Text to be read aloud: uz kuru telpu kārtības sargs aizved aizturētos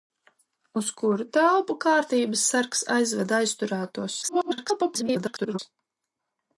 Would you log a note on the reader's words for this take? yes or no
yes